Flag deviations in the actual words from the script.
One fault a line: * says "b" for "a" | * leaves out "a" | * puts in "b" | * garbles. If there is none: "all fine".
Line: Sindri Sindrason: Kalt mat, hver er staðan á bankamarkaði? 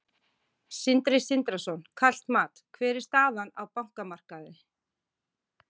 all fine